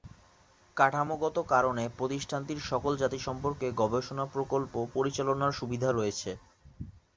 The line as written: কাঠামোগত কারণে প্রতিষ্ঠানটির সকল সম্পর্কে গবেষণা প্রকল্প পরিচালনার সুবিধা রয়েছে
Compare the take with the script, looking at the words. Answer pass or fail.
fail